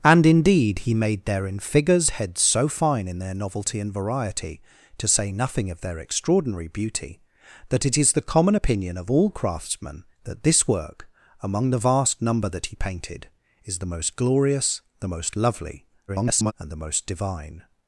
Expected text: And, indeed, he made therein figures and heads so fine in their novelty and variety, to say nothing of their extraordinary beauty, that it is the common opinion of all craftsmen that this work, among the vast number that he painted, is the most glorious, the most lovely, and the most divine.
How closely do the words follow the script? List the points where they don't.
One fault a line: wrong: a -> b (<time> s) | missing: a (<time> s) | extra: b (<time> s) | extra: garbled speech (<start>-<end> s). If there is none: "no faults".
missing: and (2.1 s)
extra: garbled speech (16.1-16.5 s)